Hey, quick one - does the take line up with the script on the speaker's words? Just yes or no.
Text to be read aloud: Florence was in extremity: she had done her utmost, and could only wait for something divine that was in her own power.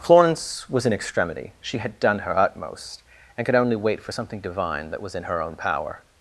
yes